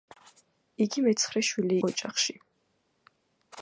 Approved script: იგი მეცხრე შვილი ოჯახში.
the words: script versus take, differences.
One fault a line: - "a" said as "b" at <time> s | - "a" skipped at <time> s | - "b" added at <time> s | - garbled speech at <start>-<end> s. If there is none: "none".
none